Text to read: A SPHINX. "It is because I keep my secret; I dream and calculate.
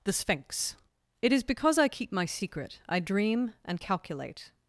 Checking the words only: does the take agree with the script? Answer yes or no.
no